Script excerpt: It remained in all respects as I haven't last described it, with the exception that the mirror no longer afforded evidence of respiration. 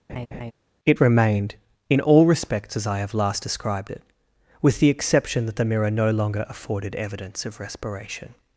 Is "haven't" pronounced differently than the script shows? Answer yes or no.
yes